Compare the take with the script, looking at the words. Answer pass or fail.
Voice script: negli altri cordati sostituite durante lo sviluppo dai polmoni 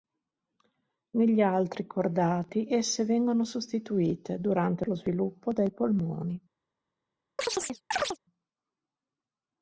fail